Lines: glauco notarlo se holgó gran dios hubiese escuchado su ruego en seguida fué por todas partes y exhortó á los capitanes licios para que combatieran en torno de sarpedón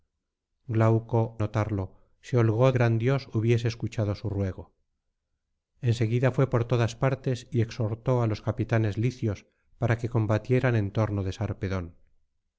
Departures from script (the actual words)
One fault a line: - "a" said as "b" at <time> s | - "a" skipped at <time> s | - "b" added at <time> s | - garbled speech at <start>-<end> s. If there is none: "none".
none